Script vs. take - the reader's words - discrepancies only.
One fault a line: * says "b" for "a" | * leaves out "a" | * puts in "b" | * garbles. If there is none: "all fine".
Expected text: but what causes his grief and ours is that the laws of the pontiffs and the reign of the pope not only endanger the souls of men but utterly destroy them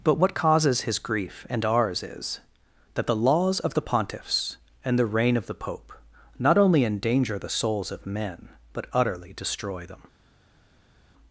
all fine